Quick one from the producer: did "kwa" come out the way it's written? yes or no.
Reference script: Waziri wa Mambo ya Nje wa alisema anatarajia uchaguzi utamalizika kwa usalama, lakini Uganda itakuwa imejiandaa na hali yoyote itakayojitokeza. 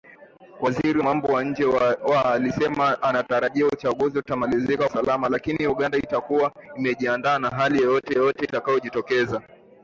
no